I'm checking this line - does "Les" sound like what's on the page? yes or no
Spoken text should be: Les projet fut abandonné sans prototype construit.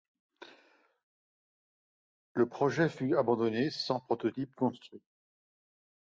no